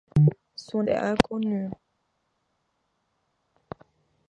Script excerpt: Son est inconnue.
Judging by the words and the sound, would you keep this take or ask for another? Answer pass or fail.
pass